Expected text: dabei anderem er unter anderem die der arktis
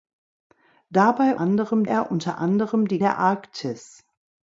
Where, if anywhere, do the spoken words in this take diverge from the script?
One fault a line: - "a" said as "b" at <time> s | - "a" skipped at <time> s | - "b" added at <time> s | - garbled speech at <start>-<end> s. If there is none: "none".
none